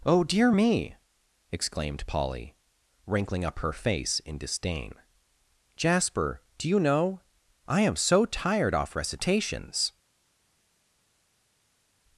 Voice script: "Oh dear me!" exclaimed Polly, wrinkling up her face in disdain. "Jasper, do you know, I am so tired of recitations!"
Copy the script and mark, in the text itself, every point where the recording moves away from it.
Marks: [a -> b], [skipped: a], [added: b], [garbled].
"Oh dear me!" exclaimed Polly, wrinkling up her face in disdain. "Jasper, do you know, I am so tired [of -> off] recitations!"